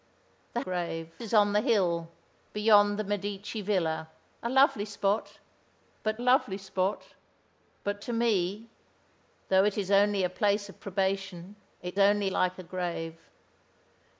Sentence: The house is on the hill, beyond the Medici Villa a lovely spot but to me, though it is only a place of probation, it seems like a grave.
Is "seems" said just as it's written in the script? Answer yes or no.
no